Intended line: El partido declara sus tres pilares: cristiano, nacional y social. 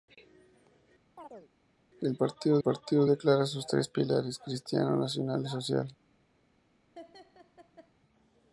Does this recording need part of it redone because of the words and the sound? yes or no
yes